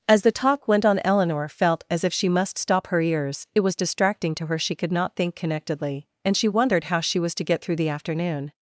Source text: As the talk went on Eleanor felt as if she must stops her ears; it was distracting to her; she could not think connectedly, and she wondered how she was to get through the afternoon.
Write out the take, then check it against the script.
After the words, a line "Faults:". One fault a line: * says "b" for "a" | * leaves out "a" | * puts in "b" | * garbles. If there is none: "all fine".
As the talk went on Eleanor felt as if she must stop her ears; it was distracting to her; she could not think connectedly, and she wondered how she was to get through the afternoon.
Faults:
* says "stop" for "stops"